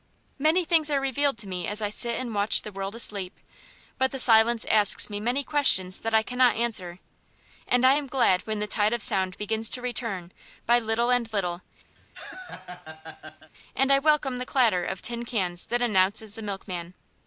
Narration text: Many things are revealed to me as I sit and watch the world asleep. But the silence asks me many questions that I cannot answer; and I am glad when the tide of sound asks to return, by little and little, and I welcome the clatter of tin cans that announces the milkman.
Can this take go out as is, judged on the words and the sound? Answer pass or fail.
fail